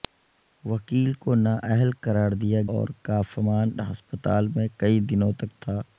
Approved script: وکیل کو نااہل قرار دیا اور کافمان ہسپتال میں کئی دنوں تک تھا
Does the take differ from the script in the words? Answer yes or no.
no